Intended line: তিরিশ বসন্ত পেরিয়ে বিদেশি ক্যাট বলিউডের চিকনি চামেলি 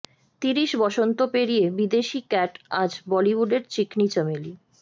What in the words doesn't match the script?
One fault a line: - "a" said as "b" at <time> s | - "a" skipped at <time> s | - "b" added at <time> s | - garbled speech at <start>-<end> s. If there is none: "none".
- "আজ" added at 2.8 s